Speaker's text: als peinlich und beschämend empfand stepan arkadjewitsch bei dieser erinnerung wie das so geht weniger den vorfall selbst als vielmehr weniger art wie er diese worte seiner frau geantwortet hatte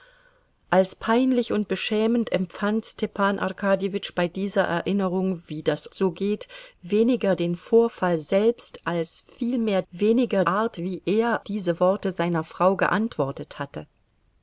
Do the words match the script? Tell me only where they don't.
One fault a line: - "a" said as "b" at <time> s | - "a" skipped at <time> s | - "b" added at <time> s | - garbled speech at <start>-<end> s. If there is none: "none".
none